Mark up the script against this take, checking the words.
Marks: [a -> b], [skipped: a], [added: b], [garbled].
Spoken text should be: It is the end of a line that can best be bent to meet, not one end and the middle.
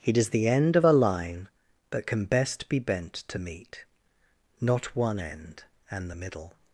It is the end of a line that can best be bent to meet, not one end and the middle.